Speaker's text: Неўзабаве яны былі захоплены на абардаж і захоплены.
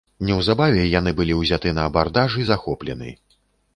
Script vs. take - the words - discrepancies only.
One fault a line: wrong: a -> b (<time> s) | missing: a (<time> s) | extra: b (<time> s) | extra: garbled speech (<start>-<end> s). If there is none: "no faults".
wrong: захоплены -> ўзяты (1.4 s)